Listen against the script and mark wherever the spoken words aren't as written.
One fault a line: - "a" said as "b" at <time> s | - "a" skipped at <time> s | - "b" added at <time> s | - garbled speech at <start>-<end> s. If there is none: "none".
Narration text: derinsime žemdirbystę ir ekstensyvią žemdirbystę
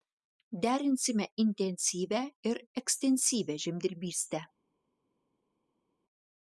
- "žemdirbystę" said as "intensyvią" at 1.4 s